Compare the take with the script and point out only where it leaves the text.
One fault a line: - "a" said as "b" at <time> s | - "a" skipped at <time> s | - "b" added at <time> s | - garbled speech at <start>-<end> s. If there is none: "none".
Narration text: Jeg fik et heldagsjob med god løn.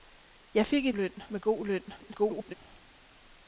- "heldagsjob" said as "løn" at 0.9 s
- garbled speech at 2.0-2.5 s